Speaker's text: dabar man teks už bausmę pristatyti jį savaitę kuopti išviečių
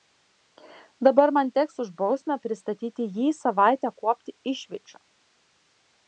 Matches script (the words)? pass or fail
pass